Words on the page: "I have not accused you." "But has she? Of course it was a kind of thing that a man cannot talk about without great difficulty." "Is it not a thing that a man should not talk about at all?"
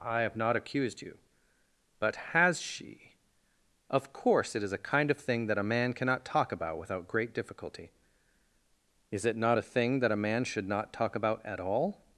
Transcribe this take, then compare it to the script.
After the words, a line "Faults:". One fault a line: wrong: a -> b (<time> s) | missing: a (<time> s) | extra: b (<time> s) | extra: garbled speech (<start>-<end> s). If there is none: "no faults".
"I have not accused you." "But has she? Of course it is a kind of thing that a man cannot talk about without great difficulty." "Is it not a thing that a man should not talk about at all?"
Faults:
wrong: was -> is (4.6 s)